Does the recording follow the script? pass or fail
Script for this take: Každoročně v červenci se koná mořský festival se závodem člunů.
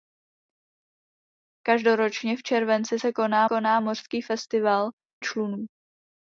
fail